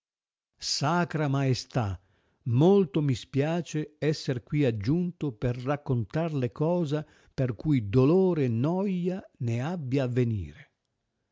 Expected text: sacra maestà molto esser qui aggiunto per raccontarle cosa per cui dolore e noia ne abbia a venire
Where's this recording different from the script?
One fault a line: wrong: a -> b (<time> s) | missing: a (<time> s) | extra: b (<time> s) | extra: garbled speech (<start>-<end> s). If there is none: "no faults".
extra: mi spiace (3.0 s)